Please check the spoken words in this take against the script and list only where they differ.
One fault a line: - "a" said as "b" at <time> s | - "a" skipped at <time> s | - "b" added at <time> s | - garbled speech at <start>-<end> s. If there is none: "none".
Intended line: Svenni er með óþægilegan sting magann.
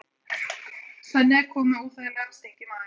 - "kominn" added at 1.5 s
- "í" added at 2.5 s